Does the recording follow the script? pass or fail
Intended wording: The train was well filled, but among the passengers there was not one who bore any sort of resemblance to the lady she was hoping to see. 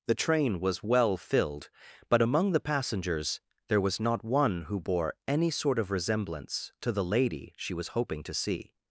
pass